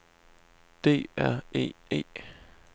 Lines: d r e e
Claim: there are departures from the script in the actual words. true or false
false